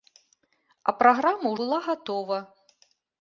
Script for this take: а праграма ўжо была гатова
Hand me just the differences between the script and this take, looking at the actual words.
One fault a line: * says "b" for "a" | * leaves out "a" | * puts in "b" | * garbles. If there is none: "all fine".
* leaves out "ўжо"